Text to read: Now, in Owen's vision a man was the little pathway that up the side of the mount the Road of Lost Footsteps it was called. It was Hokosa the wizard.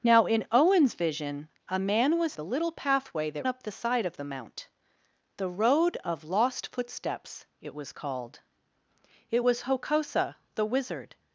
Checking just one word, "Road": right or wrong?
right